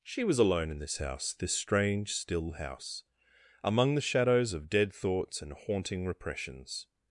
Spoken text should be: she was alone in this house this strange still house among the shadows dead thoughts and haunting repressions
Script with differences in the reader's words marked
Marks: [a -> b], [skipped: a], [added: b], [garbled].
she was alone in this house this strange still house among the shadows [added: of] dead thoughts and haunting repressions